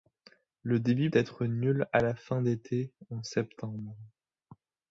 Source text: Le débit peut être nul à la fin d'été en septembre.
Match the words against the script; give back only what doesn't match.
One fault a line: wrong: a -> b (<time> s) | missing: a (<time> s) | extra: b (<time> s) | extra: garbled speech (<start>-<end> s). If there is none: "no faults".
missing: peut (1.1 s)